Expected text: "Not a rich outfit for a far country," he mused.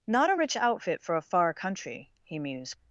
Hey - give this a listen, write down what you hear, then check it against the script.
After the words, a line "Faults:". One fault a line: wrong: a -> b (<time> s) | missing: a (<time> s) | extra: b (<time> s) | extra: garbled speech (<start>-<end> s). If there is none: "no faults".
"Not a rich outfit for a far country," he mused.
Faults:
no faults